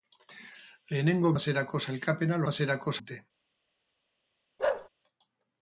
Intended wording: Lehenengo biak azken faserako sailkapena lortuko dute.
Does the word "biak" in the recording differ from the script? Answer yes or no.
yes